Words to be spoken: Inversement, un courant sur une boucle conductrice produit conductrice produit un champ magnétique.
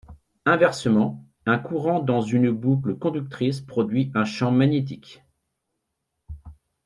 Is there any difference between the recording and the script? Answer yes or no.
yes